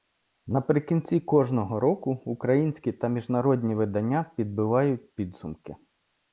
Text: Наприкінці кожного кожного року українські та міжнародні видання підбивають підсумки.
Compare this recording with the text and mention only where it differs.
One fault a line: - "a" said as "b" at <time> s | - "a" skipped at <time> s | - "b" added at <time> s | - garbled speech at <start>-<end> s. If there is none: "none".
- "кожного" skipped at 1.8 s